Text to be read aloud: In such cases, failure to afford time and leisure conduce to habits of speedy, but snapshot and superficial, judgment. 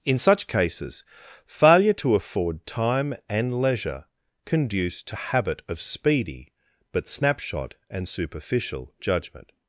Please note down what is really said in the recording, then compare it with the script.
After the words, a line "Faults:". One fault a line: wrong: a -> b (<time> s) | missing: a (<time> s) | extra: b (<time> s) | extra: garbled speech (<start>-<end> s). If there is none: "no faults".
In such cases, failure to afford time and leisure conduce to habit of speedy, but snapshot and superficial, judgment.
Faults:
wrong: habits -> habit (5.1 s)